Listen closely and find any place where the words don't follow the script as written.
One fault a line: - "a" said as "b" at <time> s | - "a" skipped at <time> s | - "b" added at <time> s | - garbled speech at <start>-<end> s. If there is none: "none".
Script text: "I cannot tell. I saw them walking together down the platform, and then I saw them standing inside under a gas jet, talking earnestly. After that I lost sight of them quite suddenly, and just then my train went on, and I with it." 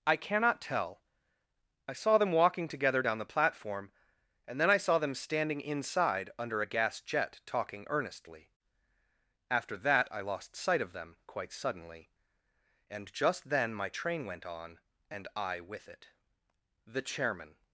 - "The chairman" added at 16.8 s